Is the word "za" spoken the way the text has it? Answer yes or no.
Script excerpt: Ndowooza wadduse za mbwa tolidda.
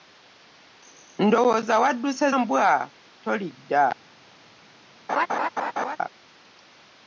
no